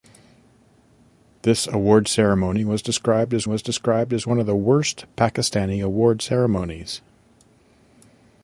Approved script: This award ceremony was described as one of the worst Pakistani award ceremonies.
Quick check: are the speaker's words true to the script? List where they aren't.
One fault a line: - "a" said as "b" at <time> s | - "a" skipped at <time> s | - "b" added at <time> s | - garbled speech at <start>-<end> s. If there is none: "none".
- "was described as" added at 3.4 s